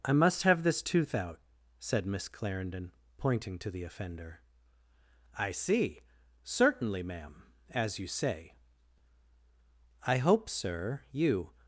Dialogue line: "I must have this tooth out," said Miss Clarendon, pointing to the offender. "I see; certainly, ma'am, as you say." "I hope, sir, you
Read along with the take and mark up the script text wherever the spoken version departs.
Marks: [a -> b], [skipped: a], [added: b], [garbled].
"I must have this tooth out," said Miss Clarendon, pointing to the offender. "I see; certainly, ma'am, as you say." "I hope, sir, you